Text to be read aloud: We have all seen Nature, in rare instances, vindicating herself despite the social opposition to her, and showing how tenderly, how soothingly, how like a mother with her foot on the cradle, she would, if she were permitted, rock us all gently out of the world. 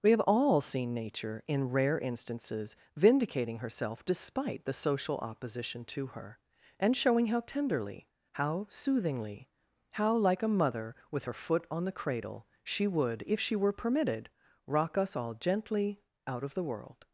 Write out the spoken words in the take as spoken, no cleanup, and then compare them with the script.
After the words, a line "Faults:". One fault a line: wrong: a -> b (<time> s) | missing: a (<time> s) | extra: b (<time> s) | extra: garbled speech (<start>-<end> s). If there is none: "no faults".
We have all seen Nature, in rare instances, vindicating herself despite the social opposition to her, and showing how tenderly, how soothingly, how like a mother with her foot on the cradle, she would, if she were permitted, rock us all gently out of the world.
Faults:
no faults